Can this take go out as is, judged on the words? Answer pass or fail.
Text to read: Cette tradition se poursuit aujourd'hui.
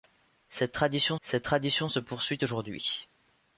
fail